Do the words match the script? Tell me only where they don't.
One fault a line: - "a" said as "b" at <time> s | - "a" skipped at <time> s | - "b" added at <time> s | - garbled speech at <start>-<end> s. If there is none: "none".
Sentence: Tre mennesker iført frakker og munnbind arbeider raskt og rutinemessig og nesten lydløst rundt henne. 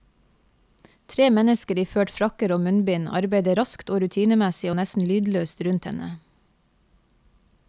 none